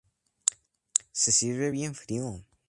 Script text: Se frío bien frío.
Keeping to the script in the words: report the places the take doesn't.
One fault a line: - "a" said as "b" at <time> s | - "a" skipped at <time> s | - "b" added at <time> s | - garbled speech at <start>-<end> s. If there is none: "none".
- "frío" said as "sirve" at 1.3 s